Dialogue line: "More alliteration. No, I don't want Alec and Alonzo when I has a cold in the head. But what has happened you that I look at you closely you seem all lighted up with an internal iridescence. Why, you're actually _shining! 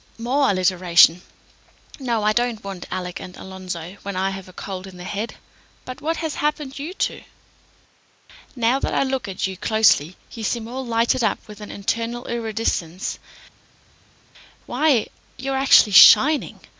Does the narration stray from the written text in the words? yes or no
yes